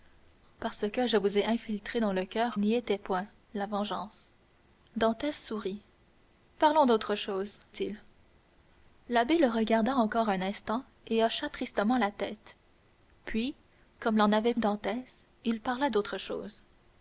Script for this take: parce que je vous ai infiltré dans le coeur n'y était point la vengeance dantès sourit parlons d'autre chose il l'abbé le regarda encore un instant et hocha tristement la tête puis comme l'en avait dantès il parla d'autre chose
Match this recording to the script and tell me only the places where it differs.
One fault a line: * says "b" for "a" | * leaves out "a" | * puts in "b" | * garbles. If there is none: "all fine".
all fine